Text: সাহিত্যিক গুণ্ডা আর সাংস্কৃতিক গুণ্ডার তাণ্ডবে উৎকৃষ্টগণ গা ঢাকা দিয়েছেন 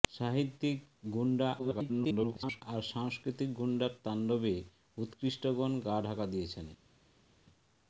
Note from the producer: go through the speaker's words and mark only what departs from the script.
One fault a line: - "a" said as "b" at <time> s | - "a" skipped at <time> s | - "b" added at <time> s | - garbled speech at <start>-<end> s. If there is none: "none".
- garbled speech at 1.6-2.6 s